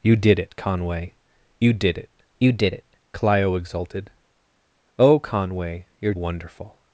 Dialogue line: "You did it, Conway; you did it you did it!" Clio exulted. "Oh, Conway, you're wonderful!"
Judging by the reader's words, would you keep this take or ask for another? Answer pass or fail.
pass